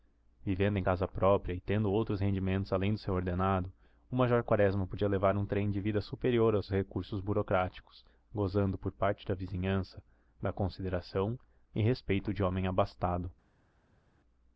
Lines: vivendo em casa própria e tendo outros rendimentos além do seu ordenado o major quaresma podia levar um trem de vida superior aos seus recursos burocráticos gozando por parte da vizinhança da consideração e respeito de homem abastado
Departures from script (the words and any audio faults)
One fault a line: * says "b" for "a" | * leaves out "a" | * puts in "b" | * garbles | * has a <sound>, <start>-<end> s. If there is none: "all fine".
* leaves out "seus"